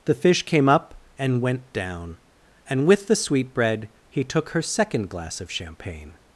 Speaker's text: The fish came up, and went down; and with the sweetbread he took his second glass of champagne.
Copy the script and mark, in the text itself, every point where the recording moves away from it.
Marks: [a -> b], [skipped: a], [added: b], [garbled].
The fish came up, and went down; and with the sweetbread he took [his -> her] second glass of champagne.